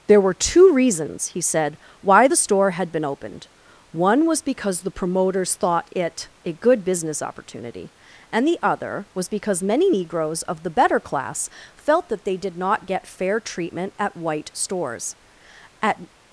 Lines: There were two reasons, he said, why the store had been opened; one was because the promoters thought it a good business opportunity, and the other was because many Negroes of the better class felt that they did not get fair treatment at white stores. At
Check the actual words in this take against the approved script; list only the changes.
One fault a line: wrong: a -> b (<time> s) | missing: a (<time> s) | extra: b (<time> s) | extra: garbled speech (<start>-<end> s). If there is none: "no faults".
no faults